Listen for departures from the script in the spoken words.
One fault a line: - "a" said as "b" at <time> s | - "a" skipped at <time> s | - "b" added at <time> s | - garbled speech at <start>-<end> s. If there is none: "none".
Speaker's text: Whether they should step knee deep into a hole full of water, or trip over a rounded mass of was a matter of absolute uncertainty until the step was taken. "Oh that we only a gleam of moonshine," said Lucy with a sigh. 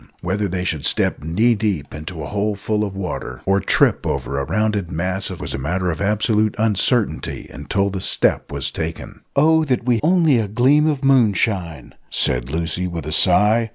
none